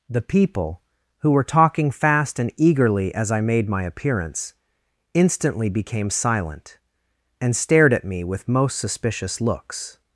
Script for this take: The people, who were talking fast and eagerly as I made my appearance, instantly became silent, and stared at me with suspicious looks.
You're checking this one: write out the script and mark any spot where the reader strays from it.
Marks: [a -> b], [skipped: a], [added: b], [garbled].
The people, who were talking fast and eagerly as I made my appearance, instantly became silent, and stared at me with [added: most] suspicious looks.